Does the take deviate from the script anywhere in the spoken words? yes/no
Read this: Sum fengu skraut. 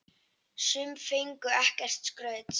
yes